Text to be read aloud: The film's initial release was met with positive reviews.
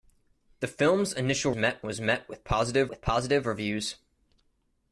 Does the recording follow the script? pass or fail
fail